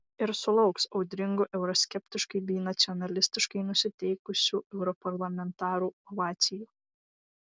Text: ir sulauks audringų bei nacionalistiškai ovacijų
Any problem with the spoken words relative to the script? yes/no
yes